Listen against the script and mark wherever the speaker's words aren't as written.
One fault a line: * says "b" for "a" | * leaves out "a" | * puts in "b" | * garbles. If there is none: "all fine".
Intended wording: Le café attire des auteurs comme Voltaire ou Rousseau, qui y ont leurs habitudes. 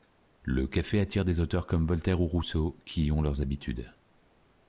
all fine